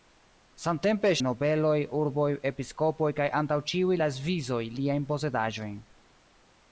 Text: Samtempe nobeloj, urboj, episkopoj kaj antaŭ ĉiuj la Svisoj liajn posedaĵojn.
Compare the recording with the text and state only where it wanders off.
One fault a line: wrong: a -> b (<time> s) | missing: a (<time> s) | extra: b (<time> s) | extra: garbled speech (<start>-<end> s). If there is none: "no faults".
no faults